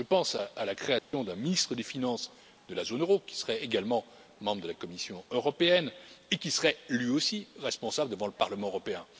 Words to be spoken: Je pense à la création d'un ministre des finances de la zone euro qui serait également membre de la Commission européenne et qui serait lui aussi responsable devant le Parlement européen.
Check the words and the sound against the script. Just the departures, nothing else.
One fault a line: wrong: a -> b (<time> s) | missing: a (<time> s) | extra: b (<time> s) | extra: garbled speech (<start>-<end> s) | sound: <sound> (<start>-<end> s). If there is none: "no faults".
sound: dropout (1.0-1.1 s)